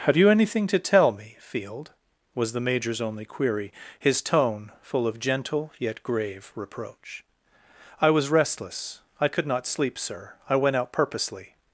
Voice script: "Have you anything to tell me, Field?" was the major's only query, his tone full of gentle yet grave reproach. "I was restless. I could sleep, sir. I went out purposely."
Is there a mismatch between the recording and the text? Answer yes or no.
yes